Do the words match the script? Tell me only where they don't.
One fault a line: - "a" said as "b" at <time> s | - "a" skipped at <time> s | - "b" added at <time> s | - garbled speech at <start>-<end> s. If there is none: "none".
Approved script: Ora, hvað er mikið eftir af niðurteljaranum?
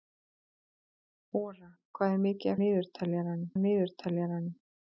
- "eftir" said as "niðurteljaranum" at 2.6 s